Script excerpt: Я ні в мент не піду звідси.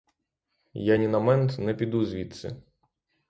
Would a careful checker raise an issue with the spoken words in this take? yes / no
yes